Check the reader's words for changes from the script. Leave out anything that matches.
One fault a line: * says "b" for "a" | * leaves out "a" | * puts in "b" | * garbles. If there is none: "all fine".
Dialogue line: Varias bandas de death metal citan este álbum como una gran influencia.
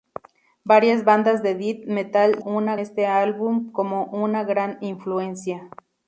* says "una" for "citan"